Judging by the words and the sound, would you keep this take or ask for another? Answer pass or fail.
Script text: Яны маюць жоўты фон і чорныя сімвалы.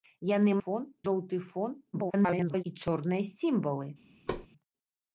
fail